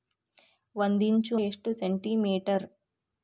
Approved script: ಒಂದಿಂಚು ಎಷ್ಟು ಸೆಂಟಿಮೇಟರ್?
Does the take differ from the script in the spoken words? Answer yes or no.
no